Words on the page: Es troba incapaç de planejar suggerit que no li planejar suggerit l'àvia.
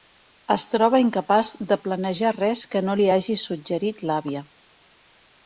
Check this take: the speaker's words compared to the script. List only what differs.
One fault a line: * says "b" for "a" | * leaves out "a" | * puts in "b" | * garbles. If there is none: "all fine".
* says "res" for "suggerit"
* says "hagi" for "planejar"